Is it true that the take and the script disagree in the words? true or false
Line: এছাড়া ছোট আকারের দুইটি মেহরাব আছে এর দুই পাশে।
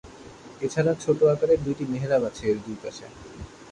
false